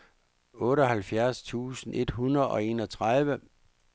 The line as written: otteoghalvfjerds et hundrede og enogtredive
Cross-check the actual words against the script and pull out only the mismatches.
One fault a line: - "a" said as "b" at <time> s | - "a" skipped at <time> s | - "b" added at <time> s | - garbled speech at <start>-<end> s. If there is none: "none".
- "tusind" added at 1.4 s